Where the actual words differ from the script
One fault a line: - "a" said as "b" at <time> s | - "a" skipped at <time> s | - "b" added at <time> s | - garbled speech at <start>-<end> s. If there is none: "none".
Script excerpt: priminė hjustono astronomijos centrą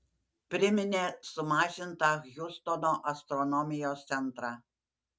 - "sumažintą" added at 1.3 s